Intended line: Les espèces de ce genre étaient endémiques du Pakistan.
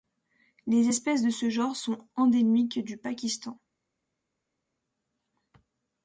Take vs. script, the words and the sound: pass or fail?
fail